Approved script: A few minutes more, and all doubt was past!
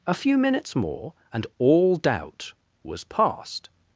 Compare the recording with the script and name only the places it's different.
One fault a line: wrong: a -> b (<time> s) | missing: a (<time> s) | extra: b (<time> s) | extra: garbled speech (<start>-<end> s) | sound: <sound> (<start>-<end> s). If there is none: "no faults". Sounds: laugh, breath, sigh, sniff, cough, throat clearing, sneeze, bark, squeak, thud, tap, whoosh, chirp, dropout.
no faults